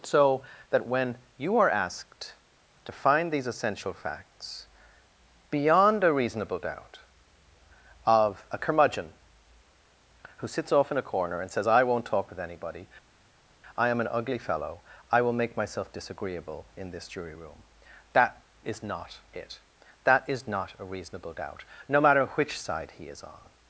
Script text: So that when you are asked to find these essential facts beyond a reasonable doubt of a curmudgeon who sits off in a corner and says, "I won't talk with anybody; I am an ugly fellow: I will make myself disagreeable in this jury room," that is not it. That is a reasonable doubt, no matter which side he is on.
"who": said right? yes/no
yes